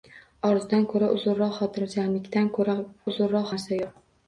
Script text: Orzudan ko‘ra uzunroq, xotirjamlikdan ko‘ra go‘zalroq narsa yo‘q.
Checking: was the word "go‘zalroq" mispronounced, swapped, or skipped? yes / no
yes